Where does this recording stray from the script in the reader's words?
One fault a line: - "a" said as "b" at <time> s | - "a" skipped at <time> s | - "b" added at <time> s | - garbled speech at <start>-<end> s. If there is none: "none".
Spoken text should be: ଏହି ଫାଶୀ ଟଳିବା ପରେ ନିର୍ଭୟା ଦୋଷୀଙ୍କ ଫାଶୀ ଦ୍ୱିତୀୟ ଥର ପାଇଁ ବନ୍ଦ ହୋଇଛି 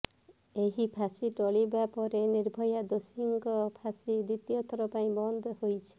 none